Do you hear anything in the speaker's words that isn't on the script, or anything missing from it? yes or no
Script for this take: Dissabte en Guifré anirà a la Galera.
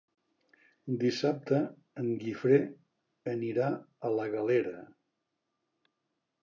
no